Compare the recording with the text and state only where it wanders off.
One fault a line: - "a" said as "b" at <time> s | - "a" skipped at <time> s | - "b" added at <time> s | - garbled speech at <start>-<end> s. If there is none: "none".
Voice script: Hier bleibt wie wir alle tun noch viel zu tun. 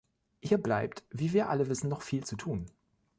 - "tun" said as "wissen" at 1.7 s